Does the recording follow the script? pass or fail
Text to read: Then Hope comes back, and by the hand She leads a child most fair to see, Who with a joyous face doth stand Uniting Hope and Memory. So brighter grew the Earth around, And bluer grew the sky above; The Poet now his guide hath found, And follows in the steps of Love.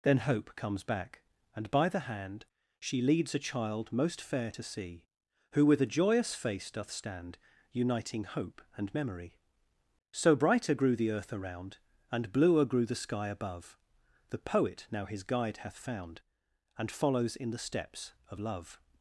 pass